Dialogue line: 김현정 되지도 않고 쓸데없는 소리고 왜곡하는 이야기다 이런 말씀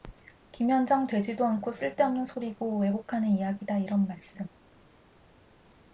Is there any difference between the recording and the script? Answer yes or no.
no